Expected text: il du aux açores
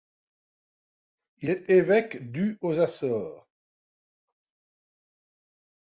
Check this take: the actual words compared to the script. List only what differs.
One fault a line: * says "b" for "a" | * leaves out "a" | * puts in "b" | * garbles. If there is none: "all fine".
* puts in "est évêque"